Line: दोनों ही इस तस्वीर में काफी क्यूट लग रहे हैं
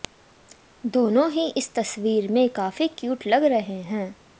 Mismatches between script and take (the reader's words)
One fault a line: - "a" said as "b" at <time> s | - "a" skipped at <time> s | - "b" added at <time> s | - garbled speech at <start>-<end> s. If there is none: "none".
none